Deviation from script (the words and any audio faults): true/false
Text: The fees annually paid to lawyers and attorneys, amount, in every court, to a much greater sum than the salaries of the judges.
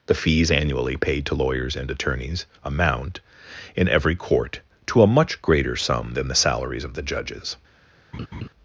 true